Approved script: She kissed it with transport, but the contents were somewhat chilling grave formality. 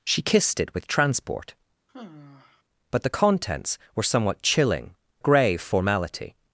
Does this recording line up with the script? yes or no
yes